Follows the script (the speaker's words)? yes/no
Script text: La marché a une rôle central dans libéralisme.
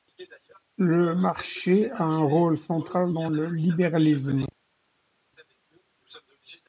no